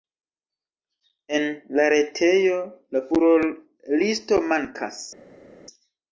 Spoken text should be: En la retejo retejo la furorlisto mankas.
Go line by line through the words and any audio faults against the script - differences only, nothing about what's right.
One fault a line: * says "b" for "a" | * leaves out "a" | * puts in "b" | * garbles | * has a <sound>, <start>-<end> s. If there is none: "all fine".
* leaves out "retejo"